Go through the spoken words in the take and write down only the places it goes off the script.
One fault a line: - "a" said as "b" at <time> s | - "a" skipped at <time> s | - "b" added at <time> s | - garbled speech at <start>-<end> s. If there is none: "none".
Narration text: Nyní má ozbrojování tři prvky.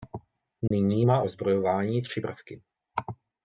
none